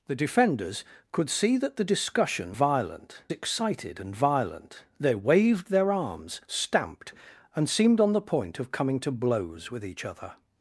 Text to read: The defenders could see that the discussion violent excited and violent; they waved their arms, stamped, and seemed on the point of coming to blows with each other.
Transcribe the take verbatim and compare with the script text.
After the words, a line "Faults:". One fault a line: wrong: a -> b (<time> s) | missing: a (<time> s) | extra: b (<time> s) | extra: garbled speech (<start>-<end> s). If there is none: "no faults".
The defenders could see that the discussion violent excited and violent; they waved their arms, stamped, and seemed on the point of coming to blows with each other.
Faults:
no faults